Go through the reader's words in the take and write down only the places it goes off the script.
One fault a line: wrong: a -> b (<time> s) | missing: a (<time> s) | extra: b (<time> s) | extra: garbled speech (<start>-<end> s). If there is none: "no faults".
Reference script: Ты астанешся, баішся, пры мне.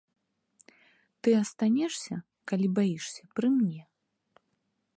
extra: калі (2.5 s)